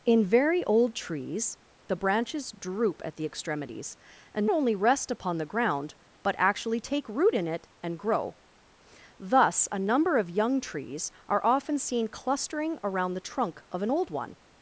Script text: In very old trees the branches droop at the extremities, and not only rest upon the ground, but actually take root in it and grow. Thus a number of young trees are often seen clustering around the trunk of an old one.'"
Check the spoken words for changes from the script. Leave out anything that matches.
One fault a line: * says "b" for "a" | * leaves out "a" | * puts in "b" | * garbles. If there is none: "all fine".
* leaves out "not"